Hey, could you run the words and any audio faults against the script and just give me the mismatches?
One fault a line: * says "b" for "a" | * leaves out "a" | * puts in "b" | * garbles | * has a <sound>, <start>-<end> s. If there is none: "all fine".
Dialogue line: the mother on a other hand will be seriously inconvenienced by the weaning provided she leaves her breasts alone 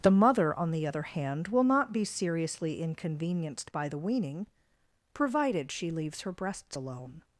* says "the" for "a"
* puts in "not"